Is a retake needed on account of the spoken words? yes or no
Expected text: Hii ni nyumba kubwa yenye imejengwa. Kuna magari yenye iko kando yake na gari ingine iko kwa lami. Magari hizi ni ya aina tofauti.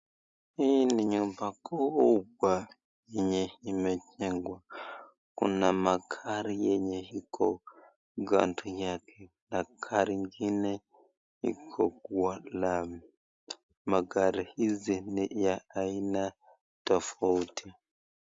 no